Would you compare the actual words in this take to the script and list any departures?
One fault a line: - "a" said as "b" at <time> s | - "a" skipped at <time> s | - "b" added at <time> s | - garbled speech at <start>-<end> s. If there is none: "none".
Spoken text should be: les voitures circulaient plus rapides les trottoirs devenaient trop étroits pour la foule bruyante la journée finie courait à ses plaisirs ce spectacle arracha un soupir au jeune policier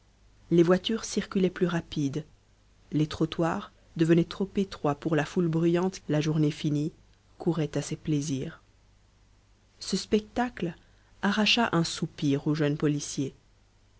none